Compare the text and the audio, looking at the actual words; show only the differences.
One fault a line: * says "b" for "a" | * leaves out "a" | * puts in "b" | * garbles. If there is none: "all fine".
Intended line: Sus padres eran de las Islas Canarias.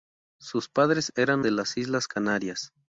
all fine